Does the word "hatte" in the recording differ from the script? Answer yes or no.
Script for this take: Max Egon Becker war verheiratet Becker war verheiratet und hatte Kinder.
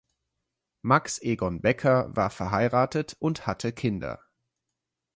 no